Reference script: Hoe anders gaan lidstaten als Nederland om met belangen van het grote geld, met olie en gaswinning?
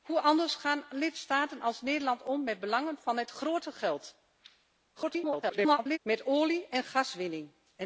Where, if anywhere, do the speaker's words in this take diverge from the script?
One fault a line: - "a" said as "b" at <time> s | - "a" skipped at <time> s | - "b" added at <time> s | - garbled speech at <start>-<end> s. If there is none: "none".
- garbled speech at 5.0-6.0 s